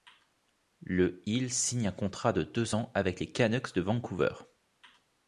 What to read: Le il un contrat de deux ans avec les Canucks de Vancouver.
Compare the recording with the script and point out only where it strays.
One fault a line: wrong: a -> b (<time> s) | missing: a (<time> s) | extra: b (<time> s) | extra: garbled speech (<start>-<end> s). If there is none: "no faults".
extra: signe (1.5 s)